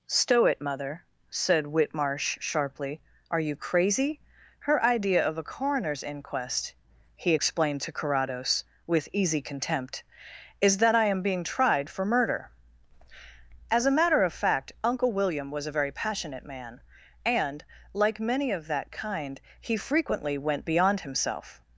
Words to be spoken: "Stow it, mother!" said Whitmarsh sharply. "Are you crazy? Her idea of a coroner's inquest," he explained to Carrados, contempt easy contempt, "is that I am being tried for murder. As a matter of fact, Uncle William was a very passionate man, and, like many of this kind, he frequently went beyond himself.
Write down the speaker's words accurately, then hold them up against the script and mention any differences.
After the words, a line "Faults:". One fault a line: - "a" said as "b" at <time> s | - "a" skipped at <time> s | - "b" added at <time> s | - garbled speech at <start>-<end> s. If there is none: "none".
"Stow it, mother!" said Whitmarsh sharply. "Are you crazy? Her idea of a coroner's inquest," he explained to Carrados, with easy contempt, "is that I am being tried for murder. As a matter of fact, Uncle William was a very passionate man, and, like many of that kind, he frequently went beyond himself.
Faults:
- "contempt" said as "with" at 8.9 s
- "this" said as "that" at 18.7 s